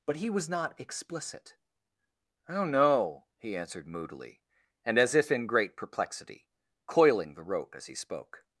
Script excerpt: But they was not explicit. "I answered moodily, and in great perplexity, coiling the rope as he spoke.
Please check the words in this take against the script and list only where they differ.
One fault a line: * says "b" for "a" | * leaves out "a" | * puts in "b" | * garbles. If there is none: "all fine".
* says "he" for "they"
* puts in "don't know he"
* puts in "as if"